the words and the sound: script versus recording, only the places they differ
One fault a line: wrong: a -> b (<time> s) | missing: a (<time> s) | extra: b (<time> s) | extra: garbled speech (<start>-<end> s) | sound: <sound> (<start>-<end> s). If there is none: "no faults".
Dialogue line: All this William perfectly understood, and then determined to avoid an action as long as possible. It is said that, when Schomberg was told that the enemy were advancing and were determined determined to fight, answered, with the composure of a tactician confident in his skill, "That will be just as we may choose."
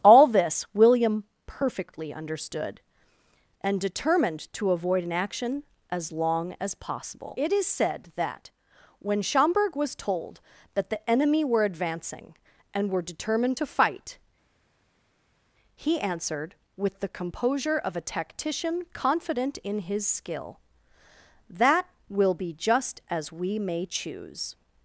missing: then (3.8 s)
missing: determined (13.6 s)
extra: he (15.8 s)